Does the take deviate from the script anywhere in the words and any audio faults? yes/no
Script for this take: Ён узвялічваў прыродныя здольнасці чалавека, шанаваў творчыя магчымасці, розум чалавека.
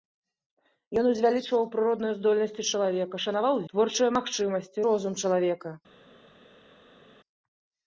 no